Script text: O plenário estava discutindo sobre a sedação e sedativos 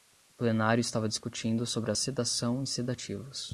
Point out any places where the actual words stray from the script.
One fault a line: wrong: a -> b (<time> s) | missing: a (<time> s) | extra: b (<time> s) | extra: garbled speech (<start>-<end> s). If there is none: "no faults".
no faults